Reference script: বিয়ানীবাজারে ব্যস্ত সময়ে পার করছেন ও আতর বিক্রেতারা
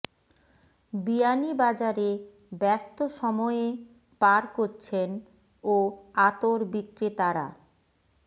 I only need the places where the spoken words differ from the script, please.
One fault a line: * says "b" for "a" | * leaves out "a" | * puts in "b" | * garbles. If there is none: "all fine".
all fine